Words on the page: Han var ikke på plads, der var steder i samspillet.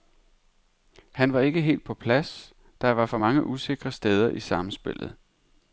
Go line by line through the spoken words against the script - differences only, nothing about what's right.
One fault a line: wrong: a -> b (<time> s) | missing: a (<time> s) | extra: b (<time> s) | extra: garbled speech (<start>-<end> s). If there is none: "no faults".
extra: helt (1.6 s)
extra: for mange usikre (3.0 s)